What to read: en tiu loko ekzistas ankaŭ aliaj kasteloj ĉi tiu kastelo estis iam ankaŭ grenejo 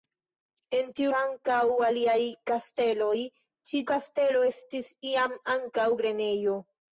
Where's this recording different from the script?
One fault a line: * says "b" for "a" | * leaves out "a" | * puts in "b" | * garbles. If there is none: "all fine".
* leaves out "loko ekzistas"
* leaves out "tiu"